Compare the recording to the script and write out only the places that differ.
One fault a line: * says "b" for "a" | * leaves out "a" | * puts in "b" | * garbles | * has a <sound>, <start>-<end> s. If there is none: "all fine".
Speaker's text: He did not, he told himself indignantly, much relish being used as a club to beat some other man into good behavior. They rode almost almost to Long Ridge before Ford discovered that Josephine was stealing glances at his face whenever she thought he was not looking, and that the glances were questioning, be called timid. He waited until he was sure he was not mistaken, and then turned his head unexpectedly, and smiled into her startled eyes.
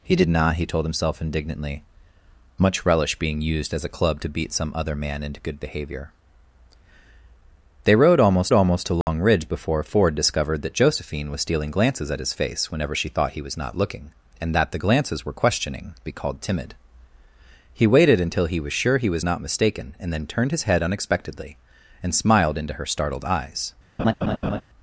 * has a dropout, 9.0-9.1 s
* has a laugh, 24.0-24.6 s